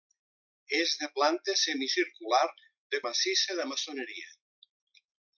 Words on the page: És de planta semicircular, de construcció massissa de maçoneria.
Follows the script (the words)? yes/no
no